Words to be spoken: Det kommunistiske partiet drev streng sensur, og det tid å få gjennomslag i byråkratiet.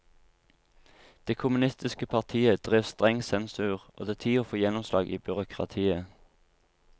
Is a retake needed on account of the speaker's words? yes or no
no